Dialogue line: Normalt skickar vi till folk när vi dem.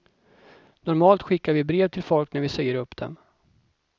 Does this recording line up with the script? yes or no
no